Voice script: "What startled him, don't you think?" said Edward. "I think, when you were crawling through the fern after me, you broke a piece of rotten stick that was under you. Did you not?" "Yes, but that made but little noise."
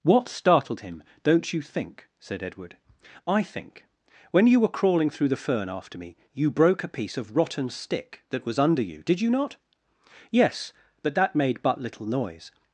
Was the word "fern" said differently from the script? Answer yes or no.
no